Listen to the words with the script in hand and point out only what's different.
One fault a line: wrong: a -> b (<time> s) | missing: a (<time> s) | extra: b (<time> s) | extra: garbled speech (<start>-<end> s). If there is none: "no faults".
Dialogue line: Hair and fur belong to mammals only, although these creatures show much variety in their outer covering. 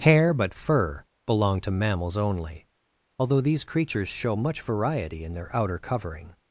wrong: and -> but (0.3 s)